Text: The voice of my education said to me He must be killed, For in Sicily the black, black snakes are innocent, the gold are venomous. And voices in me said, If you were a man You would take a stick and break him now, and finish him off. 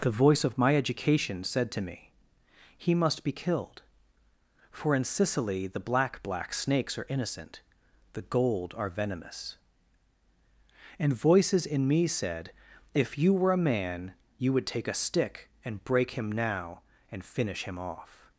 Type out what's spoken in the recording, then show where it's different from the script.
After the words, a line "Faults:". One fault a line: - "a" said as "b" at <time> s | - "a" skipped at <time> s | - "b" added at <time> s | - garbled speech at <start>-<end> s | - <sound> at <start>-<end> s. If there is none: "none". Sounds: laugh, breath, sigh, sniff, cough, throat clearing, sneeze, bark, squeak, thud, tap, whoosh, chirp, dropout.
The voice of my education said to me He must be killed, For in Sicily the black, black snakes are innocent, the gold are venomous. And voices in me said, If you were a man You would take a stick and break him now, and finish him off.
Faults:
none